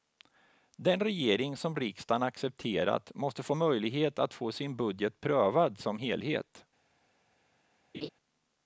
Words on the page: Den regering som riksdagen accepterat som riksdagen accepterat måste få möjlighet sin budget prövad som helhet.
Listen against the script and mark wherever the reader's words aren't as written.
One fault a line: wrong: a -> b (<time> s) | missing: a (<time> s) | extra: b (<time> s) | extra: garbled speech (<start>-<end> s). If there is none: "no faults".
wrong: som riksdagen accepterat måste -> måste få möjlighet att (3.1 s)
missing: möjlighet (4.5 s)